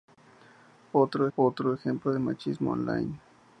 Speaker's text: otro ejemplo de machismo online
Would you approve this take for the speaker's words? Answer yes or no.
no